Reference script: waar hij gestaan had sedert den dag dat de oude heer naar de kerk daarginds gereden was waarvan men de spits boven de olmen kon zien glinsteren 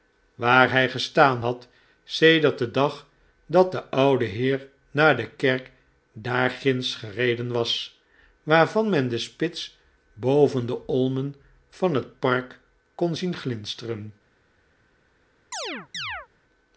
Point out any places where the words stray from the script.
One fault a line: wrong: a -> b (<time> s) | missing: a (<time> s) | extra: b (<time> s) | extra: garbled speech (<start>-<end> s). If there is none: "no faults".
extra: van het park (11.7 s)